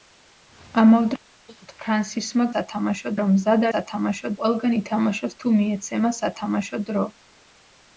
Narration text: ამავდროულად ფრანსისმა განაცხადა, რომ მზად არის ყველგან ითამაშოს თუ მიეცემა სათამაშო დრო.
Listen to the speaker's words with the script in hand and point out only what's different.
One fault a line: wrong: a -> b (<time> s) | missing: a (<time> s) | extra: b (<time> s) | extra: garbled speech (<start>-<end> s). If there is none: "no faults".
wrong: განაცხადა -> სათამაშო (2.5 s)
wrong: არის -> სათამაშო (3.7 s)